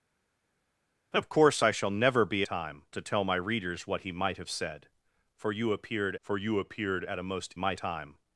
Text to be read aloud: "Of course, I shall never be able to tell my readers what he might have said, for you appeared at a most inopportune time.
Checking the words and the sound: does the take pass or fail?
fail